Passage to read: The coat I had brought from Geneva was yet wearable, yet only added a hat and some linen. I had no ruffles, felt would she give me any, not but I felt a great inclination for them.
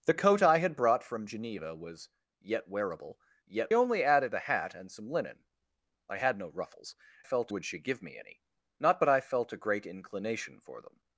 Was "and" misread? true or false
false